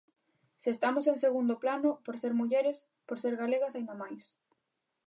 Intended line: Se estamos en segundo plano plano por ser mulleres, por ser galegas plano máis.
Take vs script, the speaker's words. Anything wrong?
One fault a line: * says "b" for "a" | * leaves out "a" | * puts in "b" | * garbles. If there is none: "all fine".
* leaves out "plano"
* says "aínda" for "plano"